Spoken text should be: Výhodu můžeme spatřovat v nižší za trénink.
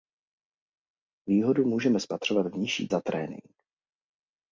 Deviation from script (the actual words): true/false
false